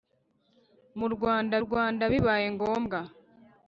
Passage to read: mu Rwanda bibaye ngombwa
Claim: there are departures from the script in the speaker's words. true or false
true